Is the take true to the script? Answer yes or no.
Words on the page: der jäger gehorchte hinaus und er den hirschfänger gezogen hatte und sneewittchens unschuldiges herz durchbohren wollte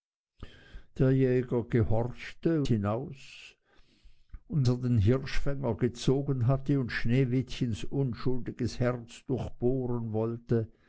yes